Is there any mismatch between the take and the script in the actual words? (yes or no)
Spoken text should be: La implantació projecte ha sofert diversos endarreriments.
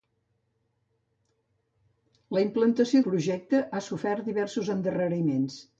no